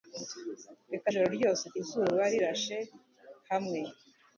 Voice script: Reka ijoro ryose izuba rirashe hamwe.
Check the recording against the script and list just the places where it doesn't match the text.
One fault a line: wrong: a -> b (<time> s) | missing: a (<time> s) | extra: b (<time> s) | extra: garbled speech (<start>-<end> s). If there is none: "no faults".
no faults